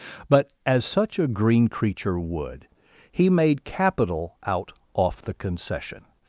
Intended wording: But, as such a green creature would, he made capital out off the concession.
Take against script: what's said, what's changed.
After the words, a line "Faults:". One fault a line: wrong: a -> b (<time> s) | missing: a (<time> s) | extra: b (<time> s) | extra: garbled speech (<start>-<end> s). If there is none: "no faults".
But, as such a green creature would, he made capital out off the concession.
Faults:
no faults